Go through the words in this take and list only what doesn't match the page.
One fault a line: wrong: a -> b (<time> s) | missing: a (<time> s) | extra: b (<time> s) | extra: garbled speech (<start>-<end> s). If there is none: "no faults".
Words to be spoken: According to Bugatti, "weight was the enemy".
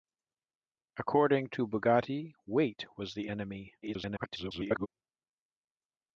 extra: garbled speech (3.8-4.9 s)